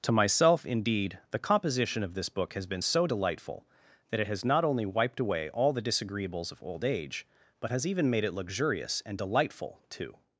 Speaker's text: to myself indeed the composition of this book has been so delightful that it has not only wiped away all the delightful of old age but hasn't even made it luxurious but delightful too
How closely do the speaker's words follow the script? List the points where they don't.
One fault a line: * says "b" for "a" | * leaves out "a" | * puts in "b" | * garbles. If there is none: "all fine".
* says "disagreeables" for "delightful"
* says "has" for "hasn't"
* says "and" for "but"